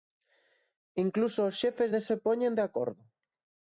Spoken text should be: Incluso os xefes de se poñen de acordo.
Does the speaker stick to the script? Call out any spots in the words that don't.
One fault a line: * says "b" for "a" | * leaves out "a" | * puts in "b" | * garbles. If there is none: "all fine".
all fine